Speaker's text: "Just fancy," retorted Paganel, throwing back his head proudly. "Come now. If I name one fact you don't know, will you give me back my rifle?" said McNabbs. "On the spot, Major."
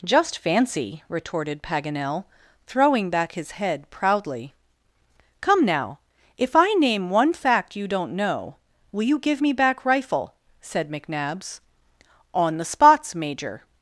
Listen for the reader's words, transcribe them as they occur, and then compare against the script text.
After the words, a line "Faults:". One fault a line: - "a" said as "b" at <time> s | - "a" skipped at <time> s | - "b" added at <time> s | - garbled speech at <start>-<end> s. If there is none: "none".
"Just fancy," retorted Paganel, throwing back his head proudly. "Come now. If I name one fact you don't know, will you give me back rifle?" said McNabbs. "On the spots, Major."
Faults:
- "my" skipped at 9.8 s
- "spot" said as "spots" at 12.6 s